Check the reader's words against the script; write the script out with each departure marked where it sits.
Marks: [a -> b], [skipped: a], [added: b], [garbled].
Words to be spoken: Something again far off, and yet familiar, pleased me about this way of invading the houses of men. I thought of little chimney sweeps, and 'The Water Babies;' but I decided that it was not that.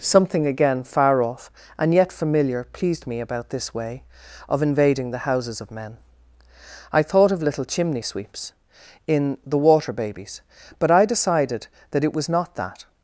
Something again far off, and yet familiar, pleased me about this way of invading the houses of men. I thought of little chimney sweeps, [and -> in] 'The Water Babies;' but I decided that it was not that.